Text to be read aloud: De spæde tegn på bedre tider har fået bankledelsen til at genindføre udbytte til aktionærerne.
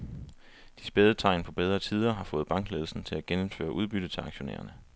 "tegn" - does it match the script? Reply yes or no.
yes